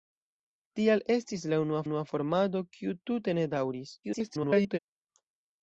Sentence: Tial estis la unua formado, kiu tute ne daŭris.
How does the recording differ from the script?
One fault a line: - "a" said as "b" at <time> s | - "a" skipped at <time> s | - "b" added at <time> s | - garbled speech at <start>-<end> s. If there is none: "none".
- "unua" added at 1.9 s
- garbled speech at 4.0-4.8 s